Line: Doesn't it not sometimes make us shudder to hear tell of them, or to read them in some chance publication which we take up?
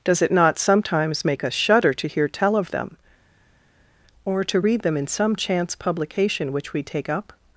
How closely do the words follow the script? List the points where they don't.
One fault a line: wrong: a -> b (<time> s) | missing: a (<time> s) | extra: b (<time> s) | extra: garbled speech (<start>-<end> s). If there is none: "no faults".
wrong: Doesn't -> Does (0.0 s)